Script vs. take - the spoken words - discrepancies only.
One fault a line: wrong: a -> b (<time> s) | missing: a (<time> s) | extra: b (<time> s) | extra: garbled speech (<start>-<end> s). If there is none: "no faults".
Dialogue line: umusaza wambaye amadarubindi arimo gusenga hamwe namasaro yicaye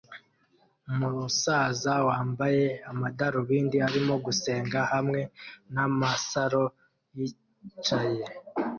no faults